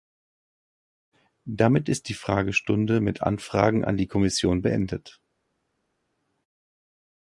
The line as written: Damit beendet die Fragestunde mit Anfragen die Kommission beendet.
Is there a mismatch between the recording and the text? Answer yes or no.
yes